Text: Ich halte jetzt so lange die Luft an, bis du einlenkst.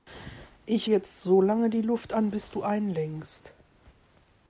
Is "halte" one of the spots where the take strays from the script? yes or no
yes